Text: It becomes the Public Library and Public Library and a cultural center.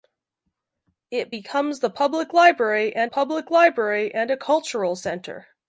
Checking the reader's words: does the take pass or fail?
pass